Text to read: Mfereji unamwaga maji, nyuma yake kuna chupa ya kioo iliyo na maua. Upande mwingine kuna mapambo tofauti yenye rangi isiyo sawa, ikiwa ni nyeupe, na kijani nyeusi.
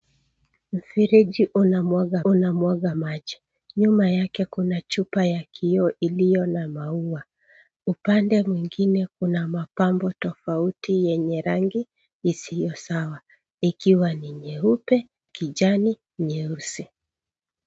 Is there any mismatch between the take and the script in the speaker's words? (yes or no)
yes